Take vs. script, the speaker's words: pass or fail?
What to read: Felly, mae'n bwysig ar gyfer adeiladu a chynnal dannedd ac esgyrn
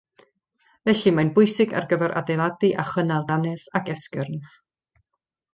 pass